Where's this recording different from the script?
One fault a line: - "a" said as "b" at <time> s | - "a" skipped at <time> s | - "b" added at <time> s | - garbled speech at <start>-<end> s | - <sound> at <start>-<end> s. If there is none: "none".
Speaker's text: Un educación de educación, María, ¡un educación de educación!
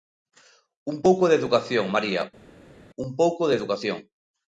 - "educación" said as "pouco" at 1.1 s
- "educación" said as "pouco" at 3.2 s